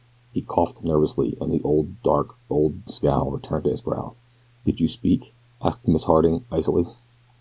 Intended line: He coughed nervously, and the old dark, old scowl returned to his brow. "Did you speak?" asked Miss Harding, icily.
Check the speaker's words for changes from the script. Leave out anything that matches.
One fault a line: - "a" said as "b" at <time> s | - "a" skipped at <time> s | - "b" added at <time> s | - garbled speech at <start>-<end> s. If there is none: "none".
none